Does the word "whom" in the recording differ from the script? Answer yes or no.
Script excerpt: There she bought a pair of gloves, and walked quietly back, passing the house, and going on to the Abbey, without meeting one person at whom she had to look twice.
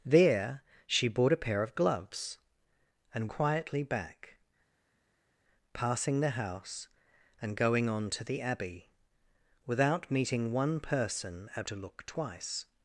yes